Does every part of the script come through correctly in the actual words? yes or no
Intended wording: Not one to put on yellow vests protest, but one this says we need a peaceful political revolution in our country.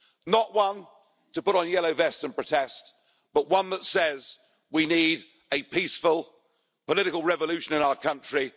no